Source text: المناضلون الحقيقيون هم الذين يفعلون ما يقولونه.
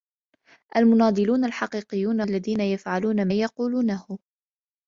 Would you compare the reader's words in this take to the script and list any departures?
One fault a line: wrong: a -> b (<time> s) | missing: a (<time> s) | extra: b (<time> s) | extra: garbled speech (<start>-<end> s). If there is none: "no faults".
missing: هم (2.2 s)
missing: ما (3.3 s)